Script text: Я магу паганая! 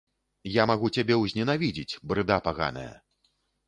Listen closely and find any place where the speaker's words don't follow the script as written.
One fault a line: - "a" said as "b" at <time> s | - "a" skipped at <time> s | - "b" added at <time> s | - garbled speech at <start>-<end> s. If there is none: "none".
- "цябе ўзненавідзець брыда" added at 1.0 s